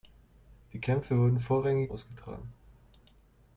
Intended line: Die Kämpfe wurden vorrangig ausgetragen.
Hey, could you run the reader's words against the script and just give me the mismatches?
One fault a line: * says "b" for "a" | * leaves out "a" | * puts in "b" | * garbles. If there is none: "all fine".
all fine